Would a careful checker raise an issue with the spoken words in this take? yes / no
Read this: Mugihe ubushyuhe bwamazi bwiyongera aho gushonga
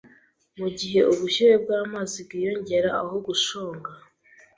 no